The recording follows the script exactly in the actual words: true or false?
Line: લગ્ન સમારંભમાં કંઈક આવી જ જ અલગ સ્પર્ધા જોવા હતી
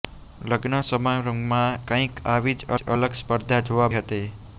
true